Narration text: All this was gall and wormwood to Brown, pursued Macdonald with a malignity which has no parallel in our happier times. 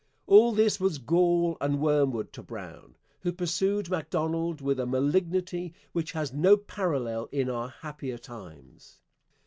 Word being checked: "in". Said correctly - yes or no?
yes